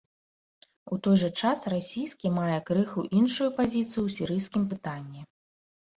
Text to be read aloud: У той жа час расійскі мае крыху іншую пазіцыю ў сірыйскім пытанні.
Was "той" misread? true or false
false